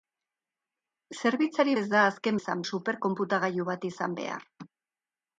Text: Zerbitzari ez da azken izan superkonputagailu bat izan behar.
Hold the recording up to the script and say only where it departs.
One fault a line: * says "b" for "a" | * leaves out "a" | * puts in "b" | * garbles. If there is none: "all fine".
all fine